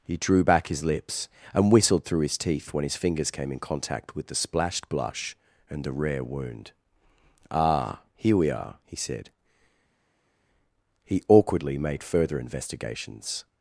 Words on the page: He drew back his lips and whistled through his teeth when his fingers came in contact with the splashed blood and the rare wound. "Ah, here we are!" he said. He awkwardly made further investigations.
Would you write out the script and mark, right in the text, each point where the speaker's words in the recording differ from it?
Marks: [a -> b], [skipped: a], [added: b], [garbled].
He drew back his lips and whistled through his teeth when his fingers came in contact with the splashed [blood -> blush] and the rare wound. "Ah, here we are!" he said. He awkwardly made further investigations.